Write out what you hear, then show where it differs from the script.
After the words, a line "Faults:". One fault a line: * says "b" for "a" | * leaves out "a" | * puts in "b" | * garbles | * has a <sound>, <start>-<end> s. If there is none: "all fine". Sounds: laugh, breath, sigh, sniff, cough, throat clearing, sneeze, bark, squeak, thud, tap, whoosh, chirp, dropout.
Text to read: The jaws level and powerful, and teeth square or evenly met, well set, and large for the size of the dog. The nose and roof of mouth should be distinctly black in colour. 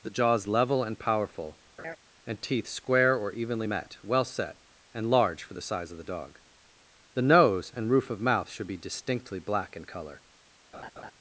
The jaws level and powerful, and teeth square or evenly met, well set, and large for the size of the dog. The nose and roof of mouth should be distinctly black in colour.
Faults:
* has a laugh, 1.8-2.0 s
* has a laugh, 10.7-11.1 s